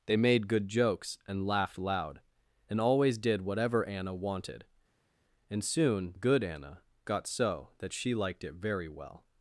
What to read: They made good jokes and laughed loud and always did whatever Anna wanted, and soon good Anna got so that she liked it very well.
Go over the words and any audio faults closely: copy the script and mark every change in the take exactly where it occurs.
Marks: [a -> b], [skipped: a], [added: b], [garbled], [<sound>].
They made good jokes and laughed loud and always did whatever Anna wanted, and soon good Anna got so that she liked it very well.